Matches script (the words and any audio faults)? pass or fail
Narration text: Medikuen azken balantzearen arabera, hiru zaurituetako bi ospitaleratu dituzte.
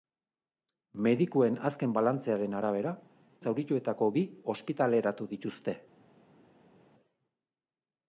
fail